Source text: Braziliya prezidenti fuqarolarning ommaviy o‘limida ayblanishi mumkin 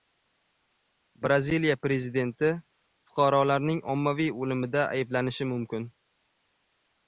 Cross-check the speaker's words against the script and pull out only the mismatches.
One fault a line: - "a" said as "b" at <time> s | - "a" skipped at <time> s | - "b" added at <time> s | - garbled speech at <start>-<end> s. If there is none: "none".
none